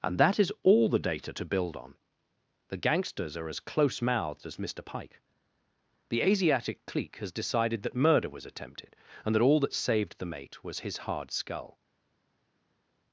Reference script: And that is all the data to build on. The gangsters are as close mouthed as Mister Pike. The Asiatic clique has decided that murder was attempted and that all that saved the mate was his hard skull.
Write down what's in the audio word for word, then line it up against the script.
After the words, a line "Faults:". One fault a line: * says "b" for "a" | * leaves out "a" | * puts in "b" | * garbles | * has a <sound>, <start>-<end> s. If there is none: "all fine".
And that is all the data to build on. The gangsters are as close mouthed as Mister Pike. The Asiatic clique has decided that murder was attempted and that all that saved the mate was his hard skull.
Faults:
all fine